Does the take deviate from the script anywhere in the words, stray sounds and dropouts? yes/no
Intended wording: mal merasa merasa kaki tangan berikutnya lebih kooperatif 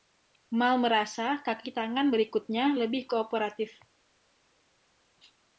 yes